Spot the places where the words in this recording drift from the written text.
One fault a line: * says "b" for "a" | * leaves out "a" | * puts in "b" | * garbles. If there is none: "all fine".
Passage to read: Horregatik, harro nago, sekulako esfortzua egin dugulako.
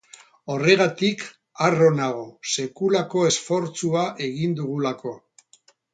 all fine